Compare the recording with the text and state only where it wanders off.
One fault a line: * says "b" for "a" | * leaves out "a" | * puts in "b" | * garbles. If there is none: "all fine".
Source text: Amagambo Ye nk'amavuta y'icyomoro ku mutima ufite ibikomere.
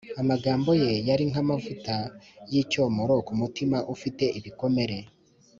* puts in "yari"